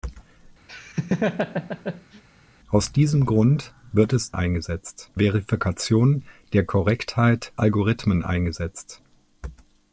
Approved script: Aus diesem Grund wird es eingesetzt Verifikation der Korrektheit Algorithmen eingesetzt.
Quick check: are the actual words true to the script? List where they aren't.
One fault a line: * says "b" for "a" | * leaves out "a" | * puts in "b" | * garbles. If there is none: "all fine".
all fine